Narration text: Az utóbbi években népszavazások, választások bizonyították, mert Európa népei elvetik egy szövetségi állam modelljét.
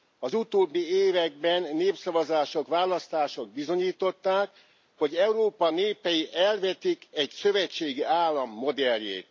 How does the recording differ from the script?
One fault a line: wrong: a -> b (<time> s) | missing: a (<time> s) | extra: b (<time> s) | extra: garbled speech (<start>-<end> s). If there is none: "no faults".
wrong: mert -> hogy (5.0 s)